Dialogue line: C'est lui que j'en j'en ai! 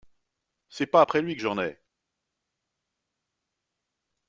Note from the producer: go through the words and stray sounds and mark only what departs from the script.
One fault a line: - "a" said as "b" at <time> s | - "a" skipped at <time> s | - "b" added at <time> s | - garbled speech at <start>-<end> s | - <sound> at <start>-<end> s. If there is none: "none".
- "pas après" added at 0.9 s
- "j'en" skipped at 1.6 s